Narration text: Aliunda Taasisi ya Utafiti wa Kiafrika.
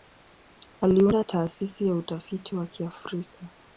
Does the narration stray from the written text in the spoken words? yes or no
no